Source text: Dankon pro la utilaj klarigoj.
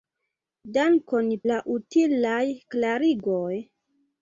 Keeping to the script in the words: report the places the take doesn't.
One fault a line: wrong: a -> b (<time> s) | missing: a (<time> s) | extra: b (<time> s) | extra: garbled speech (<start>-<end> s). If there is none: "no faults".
missing: pro (1.3 s)